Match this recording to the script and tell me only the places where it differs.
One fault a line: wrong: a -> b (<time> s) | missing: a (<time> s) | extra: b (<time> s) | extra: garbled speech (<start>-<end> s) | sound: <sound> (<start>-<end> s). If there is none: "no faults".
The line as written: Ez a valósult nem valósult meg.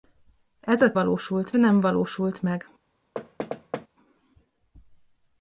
sound: thud (3.1-3.9 s)